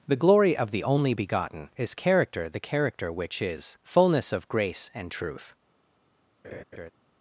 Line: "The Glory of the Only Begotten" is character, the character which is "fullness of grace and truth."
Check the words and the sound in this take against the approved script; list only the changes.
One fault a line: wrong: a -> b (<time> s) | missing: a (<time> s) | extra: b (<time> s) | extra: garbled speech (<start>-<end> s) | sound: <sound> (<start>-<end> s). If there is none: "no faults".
sound: laugh (6.4-6.9 s)